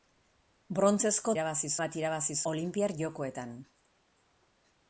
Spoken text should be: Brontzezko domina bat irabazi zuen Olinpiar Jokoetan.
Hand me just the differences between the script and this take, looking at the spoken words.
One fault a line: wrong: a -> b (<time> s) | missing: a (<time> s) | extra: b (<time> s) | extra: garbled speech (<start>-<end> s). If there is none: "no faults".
wrong: domina -> irabazi (1.4 s)
missing: zuen (2.4 s)